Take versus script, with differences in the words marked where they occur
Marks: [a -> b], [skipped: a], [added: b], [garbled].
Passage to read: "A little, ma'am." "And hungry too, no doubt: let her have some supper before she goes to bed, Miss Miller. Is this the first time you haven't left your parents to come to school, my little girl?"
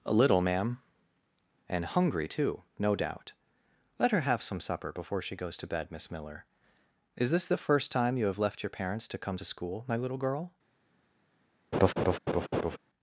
"A little, ma'am." "And hungry too, no doubt: let her have some supper before she goes to bed, Miss Miller. Is this the first time you [haven't -> have] left your parents to come to school, my little girl?"